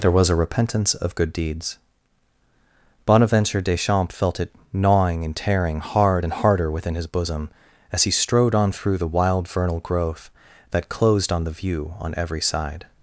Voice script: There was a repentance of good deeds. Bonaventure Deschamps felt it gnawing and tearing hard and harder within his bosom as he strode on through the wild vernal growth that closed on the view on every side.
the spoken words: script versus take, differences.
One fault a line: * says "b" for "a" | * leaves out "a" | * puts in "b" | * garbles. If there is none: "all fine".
all fine